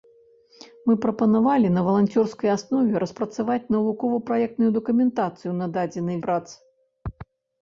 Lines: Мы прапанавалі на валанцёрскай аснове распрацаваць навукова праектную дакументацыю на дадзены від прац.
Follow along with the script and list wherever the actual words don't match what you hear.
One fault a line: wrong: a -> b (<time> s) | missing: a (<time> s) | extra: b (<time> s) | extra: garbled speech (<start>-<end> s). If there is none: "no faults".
missing: від (6.2 s)